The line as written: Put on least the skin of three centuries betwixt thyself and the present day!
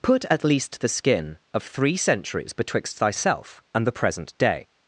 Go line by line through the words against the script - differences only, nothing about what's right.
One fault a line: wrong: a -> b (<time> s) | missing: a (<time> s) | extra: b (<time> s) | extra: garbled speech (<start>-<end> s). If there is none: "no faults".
wrong: on -> at (0.3 s)